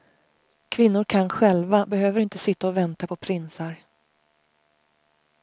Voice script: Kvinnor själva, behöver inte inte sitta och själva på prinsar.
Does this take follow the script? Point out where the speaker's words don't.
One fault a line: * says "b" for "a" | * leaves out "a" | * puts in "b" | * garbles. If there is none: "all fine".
* puts in "kan"
* leaves out "inte"
* says "vänta" for "själva"